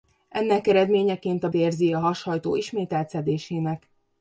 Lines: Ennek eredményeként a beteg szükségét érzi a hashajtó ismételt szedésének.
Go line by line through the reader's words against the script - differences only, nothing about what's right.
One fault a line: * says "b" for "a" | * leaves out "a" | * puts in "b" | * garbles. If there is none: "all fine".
* leaves out "beteg szükségét"